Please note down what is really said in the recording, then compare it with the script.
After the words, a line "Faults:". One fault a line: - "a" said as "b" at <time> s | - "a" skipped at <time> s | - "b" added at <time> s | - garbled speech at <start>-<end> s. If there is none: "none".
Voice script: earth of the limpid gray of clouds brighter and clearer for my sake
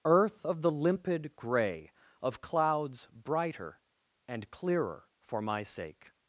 earth of the limpid gray of clouds brighter and clearer for my sake
Faults:
none